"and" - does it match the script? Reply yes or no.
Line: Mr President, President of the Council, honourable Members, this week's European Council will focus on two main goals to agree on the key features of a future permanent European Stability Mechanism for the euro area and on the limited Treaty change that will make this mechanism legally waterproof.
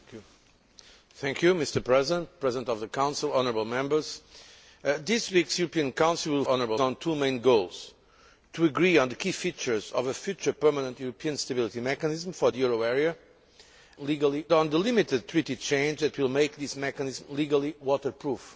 no